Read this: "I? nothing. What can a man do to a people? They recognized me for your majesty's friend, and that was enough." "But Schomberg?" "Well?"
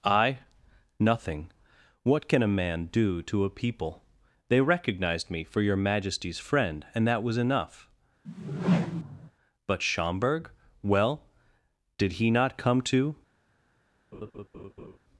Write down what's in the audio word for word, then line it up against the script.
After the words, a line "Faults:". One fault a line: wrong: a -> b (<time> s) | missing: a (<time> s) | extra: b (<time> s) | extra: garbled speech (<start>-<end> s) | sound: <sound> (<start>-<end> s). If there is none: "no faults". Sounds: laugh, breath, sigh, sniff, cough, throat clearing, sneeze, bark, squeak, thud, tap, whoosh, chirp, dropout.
"I? nothing. What can a man do to a people? They recognized me for your majesty's friend, and that was enough." "But Schomberg?" "Well?" "Did he not come to
Faults:
sound: whoosh (8.2-9.3 s)
extra: Did he not come to (12.0 s)
sound: laugh (14.1-15.0 s)